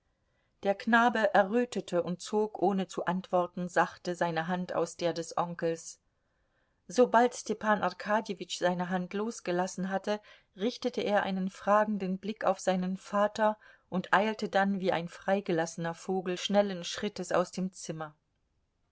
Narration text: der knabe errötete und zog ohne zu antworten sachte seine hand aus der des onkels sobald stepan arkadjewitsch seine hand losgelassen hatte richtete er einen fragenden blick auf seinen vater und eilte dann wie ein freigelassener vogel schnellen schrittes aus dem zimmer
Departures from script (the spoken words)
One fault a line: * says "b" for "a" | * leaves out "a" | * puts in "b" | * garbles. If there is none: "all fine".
all fine